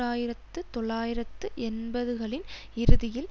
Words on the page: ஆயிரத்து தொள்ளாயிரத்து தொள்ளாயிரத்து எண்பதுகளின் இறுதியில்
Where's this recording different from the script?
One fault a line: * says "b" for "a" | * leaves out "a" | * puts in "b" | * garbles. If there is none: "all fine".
* leaves out "தொள்ளாயிரத்து"